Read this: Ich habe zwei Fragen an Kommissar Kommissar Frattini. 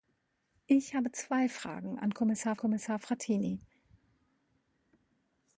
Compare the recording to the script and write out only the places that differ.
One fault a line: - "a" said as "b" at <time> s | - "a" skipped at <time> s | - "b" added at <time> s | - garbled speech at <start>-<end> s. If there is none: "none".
none